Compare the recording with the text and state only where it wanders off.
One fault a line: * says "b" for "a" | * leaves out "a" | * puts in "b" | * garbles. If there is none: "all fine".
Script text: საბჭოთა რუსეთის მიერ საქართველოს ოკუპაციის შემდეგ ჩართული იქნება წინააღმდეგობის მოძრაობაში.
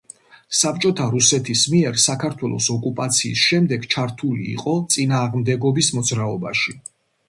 * says "იყო" for "იქნება"